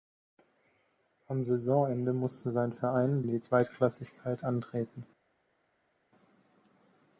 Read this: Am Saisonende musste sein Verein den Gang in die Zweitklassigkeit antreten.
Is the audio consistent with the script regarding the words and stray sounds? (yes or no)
no